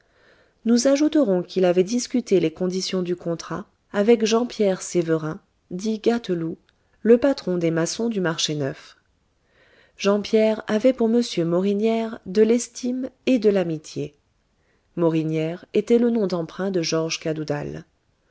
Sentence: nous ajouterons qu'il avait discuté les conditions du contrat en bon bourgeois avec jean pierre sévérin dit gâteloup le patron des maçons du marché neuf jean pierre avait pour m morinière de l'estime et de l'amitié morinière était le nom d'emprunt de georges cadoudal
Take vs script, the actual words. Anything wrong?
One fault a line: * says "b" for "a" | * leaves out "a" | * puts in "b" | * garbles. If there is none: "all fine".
* leaves out "en bon bourgeois"